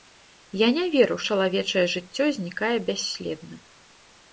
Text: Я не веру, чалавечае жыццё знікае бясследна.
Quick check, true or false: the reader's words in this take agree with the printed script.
true